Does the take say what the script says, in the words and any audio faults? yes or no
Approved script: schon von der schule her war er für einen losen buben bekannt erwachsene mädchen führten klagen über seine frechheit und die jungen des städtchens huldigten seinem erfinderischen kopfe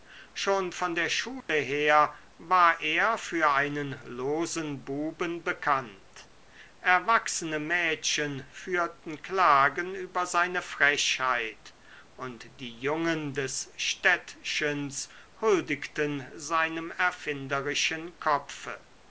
no